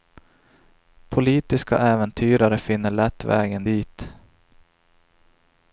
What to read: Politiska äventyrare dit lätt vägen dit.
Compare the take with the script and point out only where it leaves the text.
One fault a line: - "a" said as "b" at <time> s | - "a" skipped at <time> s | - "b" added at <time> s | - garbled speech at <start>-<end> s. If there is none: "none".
- "dit" said as "finner" at 2.6 s